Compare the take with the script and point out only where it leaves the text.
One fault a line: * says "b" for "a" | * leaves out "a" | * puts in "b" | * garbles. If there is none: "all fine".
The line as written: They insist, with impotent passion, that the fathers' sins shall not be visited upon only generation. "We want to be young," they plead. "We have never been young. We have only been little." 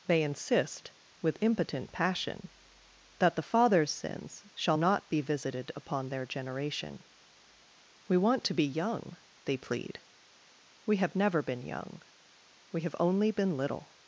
* says "their" for "only"